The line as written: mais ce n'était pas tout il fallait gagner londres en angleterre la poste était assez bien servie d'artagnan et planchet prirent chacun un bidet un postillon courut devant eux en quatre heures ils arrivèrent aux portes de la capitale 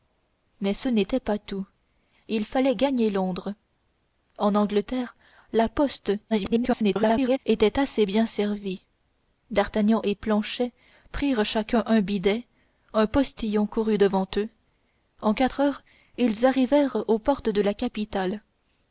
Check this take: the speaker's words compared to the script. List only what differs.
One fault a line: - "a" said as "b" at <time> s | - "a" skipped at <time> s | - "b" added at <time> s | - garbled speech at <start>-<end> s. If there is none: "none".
- garbled speech at 6.3-7.4 s